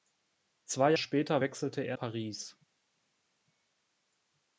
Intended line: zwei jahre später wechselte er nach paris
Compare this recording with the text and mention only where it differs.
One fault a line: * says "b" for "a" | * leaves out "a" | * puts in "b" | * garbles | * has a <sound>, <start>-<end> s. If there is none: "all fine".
* leaves out "jahre"
* leaves out "nach"